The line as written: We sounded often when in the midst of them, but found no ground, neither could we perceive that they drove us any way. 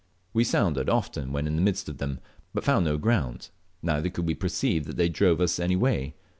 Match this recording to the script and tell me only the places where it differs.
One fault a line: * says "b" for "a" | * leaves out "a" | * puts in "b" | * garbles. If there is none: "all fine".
all fine